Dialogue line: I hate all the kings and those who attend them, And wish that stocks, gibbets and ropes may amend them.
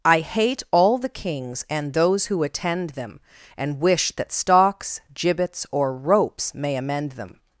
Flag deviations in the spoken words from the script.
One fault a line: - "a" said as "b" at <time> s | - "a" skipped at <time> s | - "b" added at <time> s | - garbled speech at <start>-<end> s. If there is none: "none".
- "and" said as "or" at 5.7 s